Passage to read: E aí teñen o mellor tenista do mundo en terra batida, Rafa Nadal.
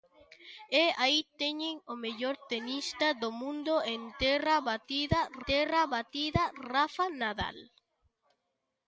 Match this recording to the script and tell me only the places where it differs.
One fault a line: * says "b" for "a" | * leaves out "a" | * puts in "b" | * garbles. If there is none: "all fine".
* puts in "terra batida"